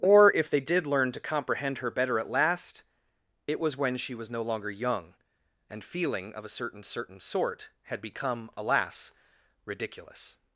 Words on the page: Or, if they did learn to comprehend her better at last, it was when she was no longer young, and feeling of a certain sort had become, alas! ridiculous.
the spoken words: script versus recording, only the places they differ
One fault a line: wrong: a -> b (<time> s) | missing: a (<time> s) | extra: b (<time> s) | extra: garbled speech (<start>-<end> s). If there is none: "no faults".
extra: certain (6.8 s)